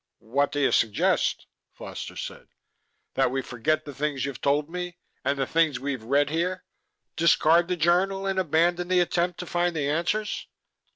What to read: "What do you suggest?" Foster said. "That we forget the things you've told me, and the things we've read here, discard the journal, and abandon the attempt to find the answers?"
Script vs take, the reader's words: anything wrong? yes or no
no